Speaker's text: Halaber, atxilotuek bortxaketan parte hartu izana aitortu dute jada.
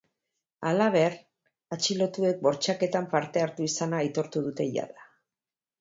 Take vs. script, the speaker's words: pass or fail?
pass